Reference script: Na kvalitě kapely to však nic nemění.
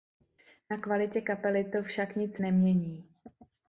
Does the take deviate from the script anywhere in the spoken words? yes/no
no